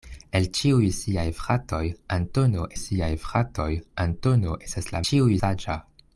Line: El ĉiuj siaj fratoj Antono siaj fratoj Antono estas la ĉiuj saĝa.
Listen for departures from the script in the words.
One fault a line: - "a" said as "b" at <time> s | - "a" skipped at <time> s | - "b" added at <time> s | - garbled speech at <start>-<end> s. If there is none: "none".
none